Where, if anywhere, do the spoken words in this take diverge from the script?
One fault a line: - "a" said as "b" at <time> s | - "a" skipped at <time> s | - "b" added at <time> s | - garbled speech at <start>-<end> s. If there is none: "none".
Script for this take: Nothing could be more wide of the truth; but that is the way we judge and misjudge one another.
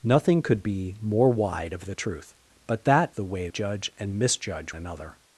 - "is" skipped at 3.1 s
- "we" skipped at 3.5 s
- "one" skipped at 4.7 s